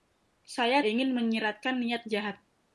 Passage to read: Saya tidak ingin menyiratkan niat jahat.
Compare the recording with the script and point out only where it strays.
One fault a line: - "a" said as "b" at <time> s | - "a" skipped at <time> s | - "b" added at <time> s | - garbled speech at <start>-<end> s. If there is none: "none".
- "tidak" skipped at 0.8 s